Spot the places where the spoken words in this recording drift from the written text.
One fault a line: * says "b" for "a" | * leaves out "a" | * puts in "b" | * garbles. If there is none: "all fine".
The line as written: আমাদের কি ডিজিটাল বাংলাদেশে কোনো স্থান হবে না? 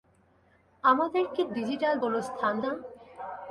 * leaves out "বাংলাদেশে"
* leaves out "হবে"